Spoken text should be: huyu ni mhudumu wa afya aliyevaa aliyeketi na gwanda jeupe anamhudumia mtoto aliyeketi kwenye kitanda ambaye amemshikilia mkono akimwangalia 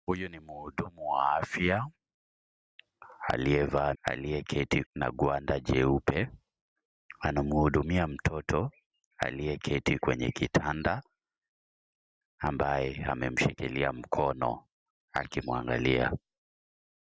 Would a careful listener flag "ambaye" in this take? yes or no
no